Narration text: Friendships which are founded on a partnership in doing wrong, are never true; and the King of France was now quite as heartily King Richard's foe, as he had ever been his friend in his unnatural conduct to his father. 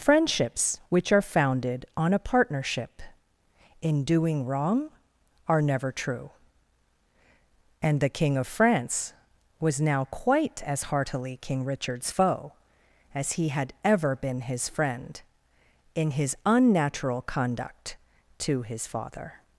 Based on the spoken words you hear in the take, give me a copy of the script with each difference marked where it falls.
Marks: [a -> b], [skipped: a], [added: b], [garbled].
Friendships which are founded on a partnership in doing wrong, are never true; and the King of France was now quite as heartily King Richard's foe, as he had ever been his friend in his unnatural conduct to his father.